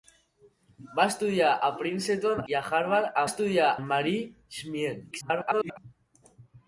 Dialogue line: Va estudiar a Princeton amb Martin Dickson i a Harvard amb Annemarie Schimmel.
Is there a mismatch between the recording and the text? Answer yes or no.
yes